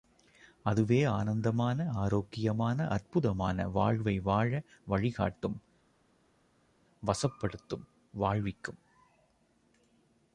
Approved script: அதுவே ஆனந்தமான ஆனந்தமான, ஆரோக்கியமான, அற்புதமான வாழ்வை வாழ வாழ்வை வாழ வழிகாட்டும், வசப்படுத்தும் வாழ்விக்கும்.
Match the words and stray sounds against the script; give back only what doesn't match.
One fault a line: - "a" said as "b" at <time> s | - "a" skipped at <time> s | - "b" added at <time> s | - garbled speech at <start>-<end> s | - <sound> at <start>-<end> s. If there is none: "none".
- "ஆனந்தமான" skipped at 1.9 s
- "வாழ்வை வாழ" skipped at 4.6 s